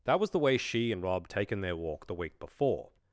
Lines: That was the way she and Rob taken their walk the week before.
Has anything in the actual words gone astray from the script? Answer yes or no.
no